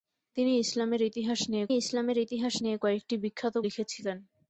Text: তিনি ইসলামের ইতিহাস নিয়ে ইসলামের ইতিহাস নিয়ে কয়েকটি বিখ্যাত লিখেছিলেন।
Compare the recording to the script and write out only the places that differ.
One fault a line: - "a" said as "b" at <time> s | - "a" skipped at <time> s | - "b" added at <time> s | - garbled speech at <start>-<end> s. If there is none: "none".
none